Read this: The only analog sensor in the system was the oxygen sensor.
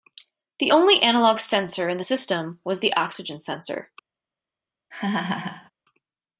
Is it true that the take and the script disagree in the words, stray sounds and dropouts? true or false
true